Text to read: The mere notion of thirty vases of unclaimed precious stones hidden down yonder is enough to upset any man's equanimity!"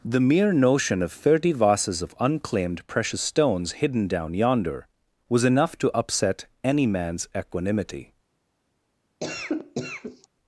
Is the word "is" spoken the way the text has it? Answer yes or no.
no